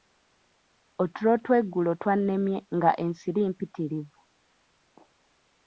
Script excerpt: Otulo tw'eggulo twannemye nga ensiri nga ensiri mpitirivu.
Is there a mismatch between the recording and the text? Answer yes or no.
yes